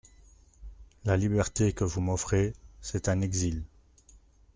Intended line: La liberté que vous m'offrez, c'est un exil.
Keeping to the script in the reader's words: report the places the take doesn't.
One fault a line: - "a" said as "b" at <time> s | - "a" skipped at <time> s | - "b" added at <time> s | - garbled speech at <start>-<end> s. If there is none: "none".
none